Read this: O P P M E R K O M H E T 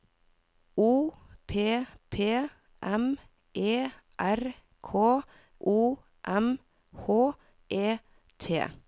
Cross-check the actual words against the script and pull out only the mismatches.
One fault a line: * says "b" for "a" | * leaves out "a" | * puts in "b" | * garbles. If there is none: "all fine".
all fine